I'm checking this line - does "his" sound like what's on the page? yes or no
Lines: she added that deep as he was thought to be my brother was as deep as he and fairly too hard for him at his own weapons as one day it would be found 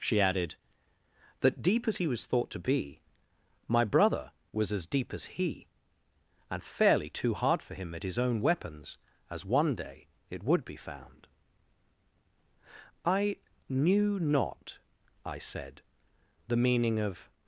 yes